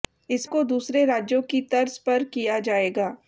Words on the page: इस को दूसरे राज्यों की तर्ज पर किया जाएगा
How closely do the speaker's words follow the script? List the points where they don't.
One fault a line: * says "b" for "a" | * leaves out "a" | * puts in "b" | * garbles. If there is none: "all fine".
all fine